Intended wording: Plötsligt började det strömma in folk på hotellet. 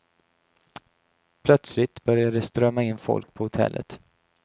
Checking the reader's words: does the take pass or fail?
pass